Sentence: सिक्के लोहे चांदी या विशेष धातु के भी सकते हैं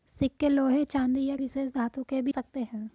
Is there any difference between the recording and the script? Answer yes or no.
no